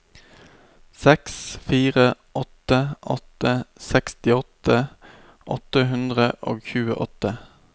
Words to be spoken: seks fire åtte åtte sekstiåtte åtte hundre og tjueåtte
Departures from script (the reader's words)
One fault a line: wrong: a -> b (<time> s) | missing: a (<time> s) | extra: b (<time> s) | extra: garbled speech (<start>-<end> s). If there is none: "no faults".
no faults